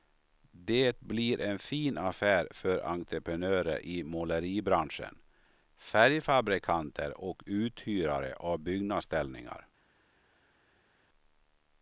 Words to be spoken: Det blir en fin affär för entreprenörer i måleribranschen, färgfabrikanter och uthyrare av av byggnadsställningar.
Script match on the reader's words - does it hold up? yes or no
no